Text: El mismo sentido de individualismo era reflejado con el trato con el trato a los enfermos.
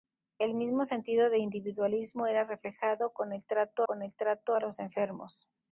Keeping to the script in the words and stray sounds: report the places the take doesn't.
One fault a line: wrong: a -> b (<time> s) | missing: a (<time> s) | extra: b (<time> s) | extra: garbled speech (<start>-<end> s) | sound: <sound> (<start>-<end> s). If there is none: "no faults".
no faults